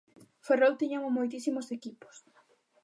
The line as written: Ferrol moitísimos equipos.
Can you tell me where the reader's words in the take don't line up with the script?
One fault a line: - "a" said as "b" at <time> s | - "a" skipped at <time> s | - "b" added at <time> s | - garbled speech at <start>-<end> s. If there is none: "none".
- "tiña" added at 0.8 s